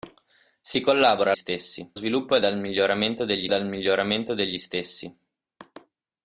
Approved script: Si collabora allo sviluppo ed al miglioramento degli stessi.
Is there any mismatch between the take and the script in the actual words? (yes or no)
yes